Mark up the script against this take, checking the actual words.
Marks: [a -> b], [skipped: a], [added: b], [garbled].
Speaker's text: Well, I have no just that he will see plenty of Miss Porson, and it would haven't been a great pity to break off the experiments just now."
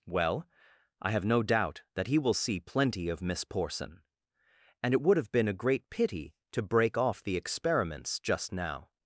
Well, I have no [just -> doubt] that he will see plenty of Miss Porson, and it would [haven't -> have] been a great pity to break off the experiments just now."